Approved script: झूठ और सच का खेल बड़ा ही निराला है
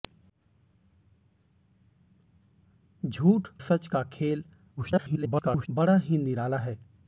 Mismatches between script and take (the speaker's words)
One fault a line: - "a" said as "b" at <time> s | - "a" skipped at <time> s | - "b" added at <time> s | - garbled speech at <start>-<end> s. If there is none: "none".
- "और" skipped at 3.5 s
- garbled speech at 4.8-5.7 s